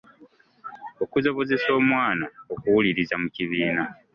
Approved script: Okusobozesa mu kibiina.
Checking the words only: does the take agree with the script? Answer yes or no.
no